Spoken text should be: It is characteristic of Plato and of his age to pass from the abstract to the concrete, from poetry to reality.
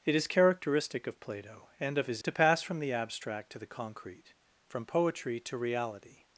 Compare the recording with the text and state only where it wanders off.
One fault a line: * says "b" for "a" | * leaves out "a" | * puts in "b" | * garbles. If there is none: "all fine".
* leaves out "age"